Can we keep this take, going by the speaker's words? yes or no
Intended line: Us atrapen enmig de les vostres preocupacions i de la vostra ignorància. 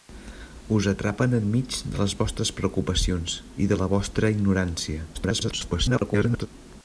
no